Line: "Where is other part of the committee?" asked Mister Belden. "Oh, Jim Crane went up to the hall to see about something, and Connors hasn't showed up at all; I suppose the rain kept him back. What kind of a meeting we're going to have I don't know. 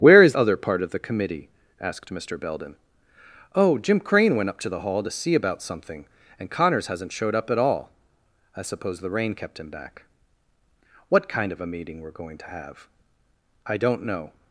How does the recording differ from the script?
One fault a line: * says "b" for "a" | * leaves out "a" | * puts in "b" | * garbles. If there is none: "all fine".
all fine